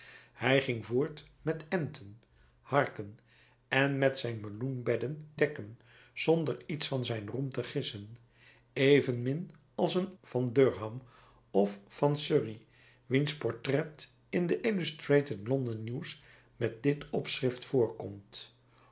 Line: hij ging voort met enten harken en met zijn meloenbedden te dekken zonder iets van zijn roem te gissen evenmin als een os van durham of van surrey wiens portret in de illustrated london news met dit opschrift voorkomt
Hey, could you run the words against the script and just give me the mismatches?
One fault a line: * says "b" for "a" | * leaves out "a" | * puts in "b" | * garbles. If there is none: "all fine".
* leaves out "te"
* leaves out "os"